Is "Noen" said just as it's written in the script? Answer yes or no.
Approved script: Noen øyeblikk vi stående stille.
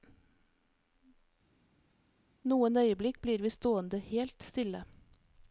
yes